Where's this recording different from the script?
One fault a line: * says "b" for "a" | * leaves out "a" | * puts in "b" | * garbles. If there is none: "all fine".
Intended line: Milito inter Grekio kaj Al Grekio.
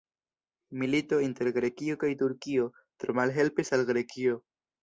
* puts in "Turkio tro malhelpis"